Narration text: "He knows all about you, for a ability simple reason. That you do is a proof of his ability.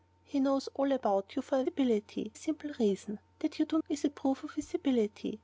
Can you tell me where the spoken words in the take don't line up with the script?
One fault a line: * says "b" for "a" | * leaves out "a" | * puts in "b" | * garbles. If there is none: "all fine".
all fine